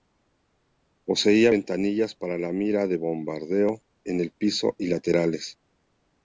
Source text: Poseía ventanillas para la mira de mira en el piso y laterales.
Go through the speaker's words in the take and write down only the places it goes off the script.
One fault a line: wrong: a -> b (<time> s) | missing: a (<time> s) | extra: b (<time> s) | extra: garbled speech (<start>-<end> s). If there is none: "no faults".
wrong: mira -> bombardeo (3.0 s)